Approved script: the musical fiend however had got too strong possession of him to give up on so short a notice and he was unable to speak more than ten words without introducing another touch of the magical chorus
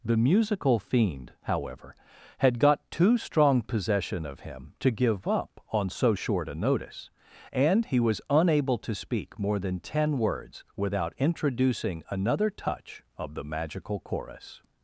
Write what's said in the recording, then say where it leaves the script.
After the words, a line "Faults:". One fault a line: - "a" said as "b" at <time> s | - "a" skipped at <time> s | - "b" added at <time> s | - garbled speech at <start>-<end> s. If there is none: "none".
the musical fiend however had got too strong possession of him to give up on so short a notice and he was unable to speak more than ten words without introducing another touch of the magical chorus
Faults:
none